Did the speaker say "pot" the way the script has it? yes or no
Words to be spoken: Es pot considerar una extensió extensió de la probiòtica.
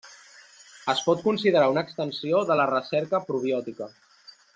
yes